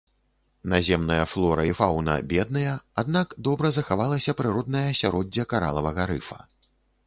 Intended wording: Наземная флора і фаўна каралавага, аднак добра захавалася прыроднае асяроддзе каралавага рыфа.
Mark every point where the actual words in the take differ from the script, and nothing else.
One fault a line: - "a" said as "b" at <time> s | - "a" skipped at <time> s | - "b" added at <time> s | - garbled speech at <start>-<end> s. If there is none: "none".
- "каралавага" said as "бедныя" at 2.3 s